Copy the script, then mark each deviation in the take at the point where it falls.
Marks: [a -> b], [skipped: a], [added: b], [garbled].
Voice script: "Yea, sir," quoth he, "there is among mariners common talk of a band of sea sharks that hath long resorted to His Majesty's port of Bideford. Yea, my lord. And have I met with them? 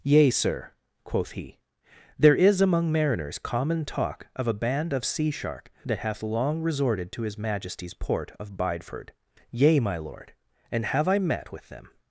"Yea, sir," quoth he, "there is among mariners common talk of a band of sea [sharks -> shark] that hath long resorted to His Majesty's port of Bideford. Yea, my lord. And have I met with them?